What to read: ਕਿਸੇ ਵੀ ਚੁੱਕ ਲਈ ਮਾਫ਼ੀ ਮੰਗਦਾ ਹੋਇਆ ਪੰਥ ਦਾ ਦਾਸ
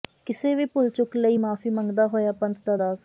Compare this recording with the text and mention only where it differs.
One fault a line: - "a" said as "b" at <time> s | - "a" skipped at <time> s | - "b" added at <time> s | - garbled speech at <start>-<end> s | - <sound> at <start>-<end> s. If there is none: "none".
- "ਭੁੱਲ" added at 0.7 s